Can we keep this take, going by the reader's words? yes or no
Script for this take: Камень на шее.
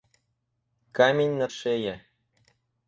yes